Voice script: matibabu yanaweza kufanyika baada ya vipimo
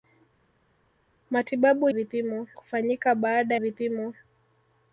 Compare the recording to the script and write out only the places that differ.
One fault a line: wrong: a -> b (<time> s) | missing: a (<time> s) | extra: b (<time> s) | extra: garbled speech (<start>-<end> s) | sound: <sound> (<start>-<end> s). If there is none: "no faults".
wrong: yanaweza -> vipimo (1.9 s)
missing: ya (3.5 s)